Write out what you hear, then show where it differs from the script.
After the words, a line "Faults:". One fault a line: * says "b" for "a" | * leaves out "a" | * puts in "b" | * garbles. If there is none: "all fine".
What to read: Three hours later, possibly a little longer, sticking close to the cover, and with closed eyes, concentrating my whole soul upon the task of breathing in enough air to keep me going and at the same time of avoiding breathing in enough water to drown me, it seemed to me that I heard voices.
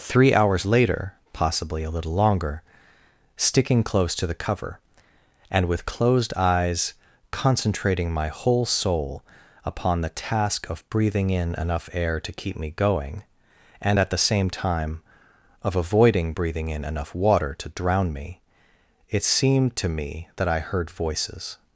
Three hours later, possibly a little longer, sticking close to the cover, and with closed eyes, concentrating my whole soul upon the task of breathing in enough air to keep me going and at the same time of avoiding breathing in enough water to drown me, it seemed to me that I heard voices.
Faults:
all fine